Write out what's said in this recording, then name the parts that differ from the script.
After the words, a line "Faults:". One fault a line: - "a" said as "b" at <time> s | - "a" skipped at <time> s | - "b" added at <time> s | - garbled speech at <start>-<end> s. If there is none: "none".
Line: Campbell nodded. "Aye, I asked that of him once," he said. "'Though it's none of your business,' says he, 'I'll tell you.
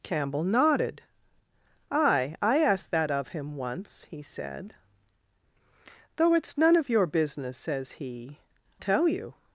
Campbell nodded. "Aye, I asked that of him once," he said. "'Though it's none of your business,' says he, 'Tell you.
Faults:
- "I'll" skipped at 8.4 s